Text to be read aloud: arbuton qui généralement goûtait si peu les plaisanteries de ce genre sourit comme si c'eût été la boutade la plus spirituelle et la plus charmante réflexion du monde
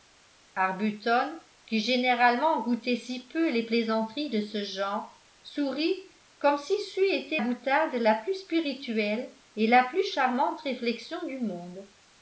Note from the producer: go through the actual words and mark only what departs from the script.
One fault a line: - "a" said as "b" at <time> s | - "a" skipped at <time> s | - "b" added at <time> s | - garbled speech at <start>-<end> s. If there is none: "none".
- "la" skipped at 7.4 s